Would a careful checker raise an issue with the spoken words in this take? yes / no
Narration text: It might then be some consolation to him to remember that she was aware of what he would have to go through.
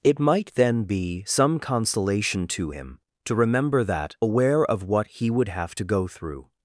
yes